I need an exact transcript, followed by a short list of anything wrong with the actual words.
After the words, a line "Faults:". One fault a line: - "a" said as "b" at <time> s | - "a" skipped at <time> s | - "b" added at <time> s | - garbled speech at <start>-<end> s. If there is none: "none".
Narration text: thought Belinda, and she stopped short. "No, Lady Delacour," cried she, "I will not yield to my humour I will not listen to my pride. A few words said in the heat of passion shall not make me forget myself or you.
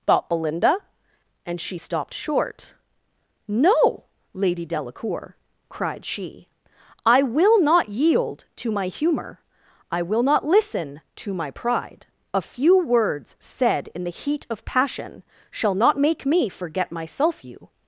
thought Belinda, and she stopped short. "No, Lady Delacour," cried she, "I will not yield to my humour I will not listen to my pride. A few words said in the heat of passion shall not make me forget myself you.
Faults:
- "or" skipped at 17.4 s